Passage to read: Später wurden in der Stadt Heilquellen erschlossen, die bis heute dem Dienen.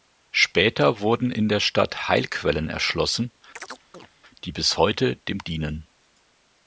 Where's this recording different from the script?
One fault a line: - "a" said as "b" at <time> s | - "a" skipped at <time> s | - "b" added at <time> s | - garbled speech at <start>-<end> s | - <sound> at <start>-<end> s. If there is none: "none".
- chirp at 3.6-4.1 s